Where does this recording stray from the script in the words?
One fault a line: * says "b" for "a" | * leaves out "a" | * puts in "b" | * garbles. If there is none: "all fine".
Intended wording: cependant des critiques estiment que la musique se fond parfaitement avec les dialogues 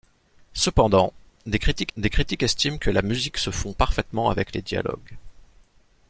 * puts in "des critiques"